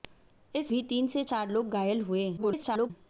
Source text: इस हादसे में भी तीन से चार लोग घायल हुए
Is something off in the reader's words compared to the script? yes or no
yes